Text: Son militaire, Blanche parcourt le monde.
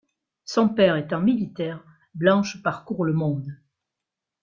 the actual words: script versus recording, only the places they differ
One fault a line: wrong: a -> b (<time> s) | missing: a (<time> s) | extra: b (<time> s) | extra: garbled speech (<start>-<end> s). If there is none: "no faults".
extra: père étant (0.7 s)